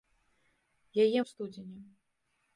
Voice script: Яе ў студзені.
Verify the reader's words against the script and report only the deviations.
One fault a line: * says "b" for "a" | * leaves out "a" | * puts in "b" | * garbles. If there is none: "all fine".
all fine